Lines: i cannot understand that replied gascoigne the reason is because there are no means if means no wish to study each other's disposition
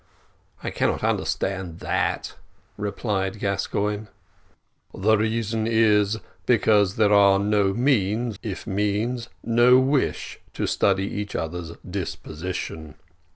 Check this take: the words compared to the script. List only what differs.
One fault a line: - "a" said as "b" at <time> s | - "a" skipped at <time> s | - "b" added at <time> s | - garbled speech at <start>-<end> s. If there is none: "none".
none